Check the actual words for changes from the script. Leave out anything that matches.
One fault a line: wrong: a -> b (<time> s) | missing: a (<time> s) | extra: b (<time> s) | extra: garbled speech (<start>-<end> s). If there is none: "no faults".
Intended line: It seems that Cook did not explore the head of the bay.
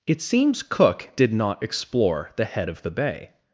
missing: that (0.6 s)